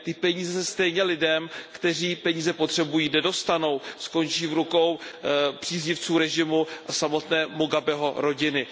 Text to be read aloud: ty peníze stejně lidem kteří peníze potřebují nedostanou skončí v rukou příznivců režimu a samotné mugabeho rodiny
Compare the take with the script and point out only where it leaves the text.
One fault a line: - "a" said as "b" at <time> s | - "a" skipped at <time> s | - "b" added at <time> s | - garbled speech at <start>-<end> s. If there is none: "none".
none